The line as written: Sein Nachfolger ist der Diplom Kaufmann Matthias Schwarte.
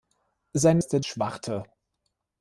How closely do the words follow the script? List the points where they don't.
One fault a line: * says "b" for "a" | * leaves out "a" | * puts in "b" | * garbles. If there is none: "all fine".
* leaves out "Nachfolger"
* leaves out "Diplom Kaufmann Matthias"